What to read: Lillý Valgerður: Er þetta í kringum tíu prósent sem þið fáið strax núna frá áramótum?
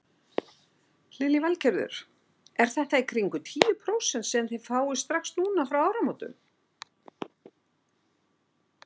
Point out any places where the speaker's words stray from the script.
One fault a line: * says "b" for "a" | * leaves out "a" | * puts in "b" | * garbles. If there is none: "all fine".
all fine